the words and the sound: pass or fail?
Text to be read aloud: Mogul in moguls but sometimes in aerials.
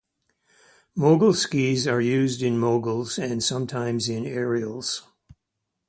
fail